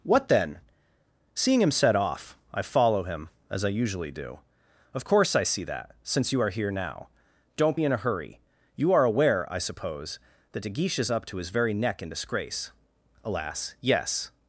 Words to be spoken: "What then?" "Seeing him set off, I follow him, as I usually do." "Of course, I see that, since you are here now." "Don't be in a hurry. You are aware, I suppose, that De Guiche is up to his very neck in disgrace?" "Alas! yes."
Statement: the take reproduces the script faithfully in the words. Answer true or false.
true